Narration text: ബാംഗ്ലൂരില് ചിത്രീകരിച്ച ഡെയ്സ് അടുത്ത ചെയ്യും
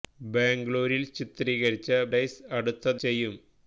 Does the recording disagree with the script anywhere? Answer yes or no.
no